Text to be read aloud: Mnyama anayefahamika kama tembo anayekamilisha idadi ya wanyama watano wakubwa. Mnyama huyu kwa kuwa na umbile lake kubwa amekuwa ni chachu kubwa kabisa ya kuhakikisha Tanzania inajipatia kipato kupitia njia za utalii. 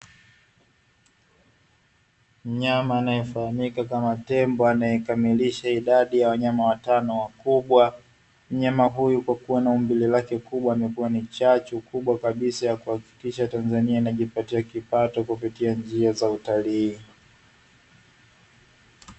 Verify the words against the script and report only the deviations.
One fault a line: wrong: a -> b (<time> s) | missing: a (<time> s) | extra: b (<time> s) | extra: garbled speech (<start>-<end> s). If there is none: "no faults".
no faults